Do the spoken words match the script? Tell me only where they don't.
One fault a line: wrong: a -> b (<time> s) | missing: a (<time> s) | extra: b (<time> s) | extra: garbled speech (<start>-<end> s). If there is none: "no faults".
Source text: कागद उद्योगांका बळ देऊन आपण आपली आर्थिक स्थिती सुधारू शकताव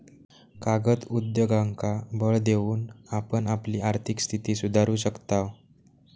no faults